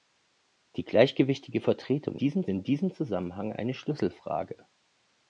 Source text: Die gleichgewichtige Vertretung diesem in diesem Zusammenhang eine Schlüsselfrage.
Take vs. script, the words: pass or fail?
pass